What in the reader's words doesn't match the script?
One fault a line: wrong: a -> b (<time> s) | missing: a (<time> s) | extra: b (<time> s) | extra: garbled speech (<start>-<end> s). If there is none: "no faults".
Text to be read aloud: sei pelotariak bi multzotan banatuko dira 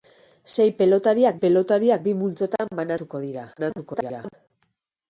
extra: pelotariak (1.4 s)
extra: garbled speech (3.6-4.3 s)